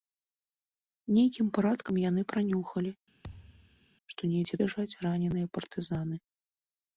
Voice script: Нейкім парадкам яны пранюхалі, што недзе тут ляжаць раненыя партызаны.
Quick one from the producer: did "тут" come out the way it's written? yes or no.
no